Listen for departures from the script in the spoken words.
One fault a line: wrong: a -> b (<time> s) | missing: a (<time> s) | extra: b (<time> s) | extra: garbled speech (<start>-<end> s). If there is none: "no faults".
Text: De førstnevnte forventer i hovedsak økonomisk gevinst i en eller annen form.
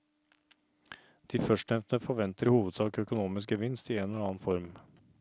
no faults